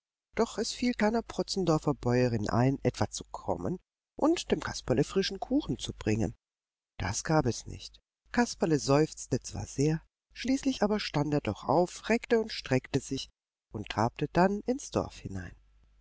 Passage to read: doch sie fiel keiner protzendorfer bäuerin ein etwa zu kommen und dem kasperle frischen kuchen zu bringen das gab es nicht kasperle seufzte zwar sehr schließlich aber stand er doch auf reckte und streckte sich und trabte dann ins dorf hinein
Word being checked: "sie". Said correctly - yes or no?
no